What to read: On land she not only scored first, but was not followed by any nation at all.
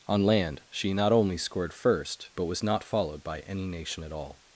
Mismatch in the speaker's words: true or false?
false